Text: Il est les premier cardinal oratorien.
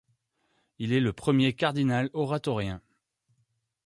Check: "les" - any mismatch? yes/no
yes